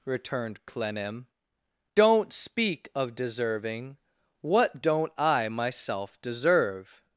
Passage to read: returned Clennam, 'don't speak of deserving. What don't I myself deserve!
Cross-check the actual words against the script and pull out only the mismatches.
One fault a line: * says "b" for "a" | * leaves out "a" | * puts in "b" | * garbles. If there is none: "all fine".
all fine